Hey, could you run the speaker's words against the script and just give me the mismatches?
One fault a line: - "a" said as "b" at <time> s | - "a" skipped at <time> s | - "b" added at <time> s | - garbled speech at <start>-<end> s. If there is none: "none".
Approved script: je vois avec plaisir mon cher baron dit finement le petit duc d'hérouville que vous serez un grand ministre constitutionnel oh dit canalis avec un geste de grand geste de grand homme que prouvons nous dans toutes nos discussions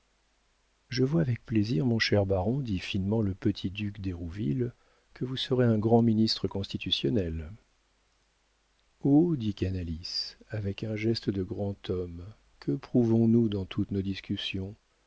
- "geste de grand" skipped at 11.9 s